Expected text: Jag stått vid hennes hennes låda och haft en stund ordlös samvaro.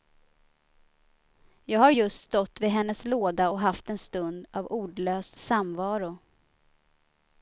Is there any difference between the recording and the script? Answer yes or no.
yes